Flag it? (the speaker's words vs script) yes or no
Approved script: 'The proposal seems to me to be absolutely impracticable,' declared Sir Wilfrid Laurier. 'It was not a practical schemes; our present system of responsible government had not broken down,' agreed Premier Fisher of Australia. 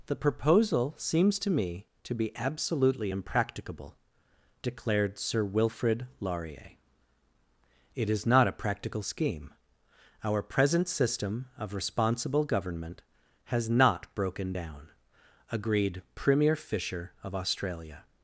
yes